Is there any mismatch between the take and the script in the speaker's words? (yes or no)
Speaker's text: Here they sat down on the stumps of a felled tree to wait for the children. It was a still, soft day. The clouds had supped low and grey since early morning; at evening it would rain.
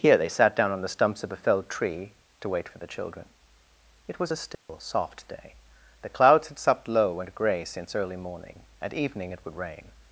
no